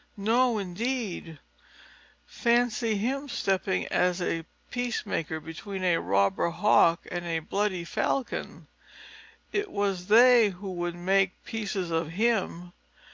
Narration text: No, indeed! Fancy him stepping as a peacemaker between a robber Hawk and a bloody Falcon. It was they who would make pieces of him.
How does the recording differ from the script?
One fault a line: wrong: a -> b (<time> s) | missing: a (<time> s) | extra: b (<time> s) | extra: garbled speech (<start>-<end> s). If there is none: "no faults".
no faults